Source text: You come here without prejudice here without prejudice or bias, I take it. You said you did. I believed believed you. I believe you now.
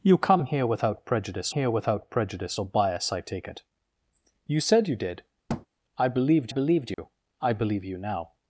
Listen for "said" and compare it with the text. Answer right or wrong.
right